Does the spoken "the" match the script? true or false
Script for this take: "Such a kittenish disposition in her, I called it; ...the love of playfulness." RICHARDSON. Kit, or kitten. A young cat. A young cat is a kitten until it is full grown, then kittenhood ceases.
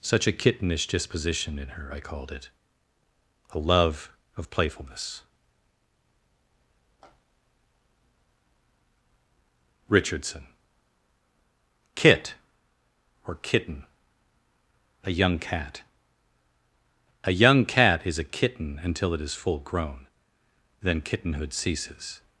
false